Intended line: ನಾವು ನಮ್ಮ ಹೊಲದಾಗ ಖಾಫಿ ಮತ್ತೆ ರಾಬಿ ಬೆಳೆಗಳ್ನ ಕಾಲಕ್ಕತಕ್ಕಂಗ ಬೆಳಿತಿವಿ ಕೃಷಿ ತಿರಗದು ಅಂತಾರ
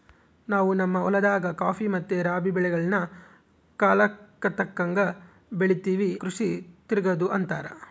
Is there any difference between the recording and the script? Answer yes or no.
no